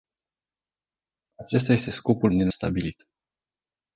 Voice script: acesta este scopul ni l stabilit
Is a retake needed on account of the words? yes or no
no